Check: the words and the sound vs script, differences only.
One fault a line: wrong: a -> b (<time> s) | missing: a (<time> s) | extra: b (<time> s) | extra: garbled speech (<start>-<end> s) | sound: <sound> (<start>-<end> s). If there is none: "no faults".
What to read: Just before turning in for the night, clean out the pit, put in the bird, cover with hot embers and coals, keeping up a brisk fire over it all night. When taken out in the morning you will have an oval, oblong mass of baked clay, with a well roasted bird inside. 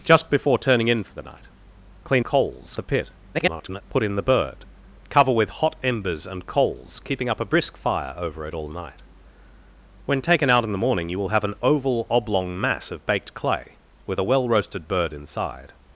wrong: out -> coals (2.2 s)
extra: garbled speech (3.3-3.8 s)